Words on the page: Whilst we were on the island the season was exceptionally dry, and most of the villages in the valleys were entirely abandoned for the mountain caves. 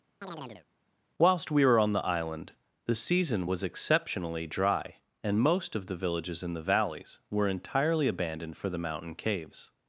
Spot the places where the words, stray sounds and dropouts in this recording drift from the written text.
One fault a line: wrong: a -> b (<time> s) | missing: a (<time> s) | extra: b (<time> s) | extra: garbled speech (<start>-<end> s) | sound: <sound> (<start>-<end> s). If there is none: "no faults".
sound: chirp (0.2-0.7 s)